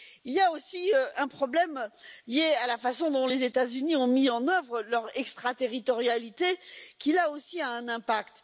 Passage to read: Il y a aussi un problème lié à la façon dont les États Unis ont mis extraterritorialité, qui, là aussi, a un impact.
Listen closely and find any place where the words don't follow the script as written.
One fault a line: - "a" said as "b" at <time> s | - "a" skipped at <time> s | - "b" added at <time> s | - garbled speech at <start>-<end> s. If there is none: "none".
- "en œuvre leur" added at 4.3 s